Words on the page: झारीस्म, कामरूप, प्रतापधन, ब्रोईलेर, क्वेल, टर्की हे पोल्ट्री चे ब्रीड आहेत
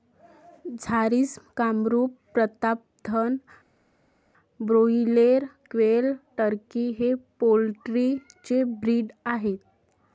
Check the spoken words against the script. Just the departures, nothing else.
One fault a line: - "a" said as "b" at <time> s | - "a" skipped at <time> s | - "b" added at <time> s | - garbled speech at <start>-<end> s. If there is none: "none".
none